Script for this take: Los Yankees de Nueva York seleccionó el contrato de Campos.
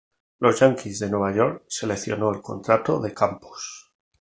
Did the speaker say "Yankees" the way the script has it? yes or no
yes